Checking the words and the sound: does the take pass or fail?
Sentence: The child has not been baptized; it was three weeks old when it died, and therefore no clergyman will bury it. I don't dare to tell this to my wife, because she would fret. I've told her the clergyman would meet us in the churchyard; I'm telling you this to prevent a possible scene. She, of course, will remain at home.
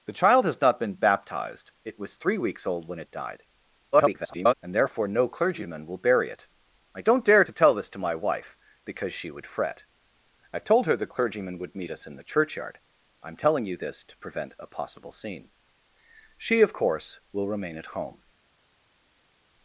fail